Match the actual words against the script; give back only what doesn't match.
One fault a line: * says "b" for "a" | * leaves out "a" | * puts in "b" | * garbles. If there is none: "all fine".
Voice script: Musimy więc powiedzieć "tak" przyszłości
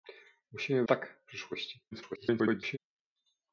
* leaves out "więc powiedzieć"
* garbles